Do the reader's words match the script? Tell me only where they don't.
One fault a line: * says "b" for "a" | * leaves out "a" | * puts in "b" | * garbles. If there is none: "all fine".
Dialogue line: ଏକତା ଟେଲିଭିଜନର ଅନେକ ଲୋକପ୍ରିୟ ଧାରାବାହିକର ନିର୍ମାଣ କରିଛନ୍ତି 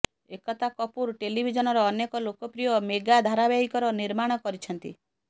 * puts in "କପୁର"
* puts in "ମେଗା"